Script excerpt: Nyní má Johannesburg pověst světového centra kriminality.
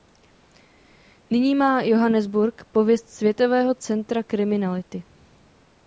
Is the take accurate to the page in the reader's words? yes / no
yes